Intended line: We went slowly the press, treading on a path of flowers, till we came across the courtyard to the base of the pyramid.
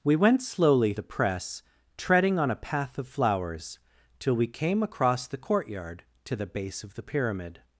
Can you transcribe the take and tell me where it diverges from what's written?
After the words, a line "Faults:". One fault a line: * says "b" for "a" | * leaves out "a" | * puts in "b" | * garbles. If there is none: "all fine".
We went slowly the press, treading on a path of flowers, till we came across the courtyard to the base of the pyramid.
Faults:
all fine